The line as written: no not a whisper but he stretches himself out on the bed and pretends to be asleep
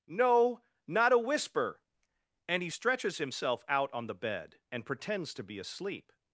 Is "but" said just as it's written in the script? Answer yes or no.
no